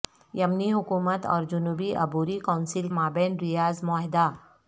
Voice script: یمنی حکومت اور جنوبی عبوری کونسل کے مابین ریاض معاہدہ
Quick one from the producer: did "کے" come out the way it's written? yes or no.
no